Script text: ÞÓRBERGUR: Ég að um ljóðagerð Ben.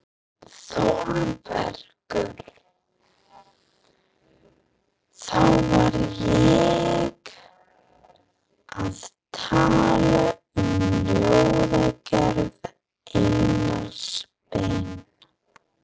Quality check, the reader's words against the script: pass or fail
fail